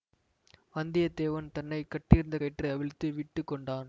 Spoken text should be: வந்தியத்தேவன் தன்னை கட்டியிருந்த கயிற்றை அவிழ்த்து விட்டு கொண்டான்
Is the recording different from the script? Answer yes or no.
no